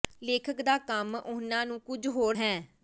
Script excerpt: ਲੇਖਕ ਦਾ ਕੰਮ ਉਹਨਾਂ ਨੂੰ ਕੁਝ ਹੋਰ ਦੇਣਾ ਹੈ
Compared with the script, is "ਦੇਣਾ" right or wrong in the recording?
wrong